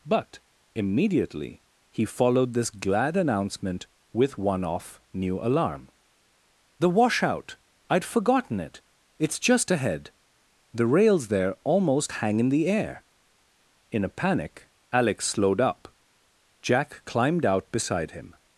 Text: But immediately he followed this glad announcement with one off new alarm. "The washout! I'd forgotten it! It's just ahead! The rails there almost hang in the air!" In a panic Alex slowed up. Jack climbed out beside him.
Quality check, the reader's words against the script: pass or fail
pass